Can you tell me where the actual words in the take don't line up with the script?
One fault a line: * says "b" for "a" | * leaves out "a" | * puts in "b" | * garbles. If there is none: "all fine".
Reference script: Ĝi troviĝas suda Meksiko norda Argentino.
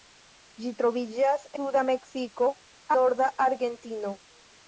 all fine